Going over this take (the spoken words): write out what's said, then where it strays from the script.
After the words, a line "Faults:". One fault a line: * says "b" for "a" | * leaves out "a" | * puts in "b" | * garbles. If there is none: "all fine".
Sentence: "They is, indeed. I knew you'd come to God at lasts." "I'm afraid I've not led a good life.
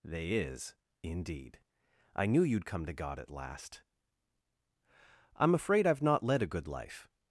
"They is, indeed. I knew you'd come to God at last." "I'm afraid I've not led a good life.
Faults:
* says "last" for "lasts"